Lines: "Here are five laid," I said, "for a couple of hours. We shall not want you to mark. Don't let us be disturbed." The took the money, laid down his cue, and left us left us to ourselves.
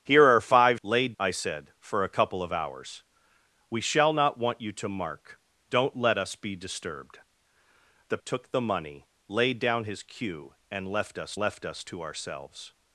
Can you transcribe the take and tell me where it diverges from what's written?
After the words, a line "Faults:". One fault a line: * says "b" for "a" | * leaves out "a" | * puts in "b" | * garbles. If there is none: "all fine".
"Here are five laid," I said, "for a couple of hours. We shall not want you to mark. Don't let us be disturbed." The took the money, laid down his cue, and left us left us to ourselves.
Faults:
all fine